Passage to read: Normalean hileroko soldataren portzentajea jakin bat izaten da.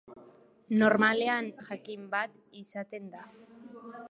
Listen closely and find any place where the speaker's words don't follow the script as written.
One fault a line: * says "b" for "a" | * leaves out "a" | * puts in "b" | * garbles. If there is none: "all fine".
* leaves out "hileroko soldataren portzentajea"